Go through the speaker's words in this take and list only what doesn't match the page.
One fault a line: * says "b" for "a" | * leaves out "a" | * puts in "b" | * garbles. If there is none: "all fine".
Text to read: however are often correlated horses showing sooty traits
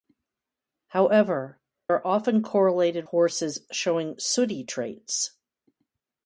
all fine